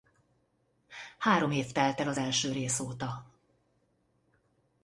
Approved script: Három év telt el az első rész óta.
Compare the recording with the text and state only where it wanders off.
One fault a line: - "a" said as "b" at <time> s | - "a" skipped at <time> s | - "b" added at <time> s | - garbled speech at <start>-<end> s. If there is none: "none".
none